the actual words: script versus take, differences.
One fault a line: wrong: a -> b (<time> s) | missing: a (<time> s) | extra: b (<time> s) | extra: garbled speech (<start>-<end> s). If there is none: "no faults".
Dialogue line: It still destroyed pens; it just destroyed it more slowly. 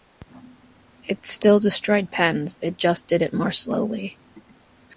wrong: destroyed -> did (3.0 s)